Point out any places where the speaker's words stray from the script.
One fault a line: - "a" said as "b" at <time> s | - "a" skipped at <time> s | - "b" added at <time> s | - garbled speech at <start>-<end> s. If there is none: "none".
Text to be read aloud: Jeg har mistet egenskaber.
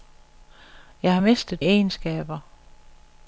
none